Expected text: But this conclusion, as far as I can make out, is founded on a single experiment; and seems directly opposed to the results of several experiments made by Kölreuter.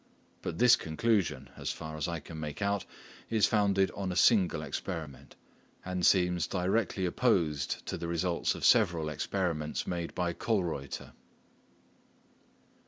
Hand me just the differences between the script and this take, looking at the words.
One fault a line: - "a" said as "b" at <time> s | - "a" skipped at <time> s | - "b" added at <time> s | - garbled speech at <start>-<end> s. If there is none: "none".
none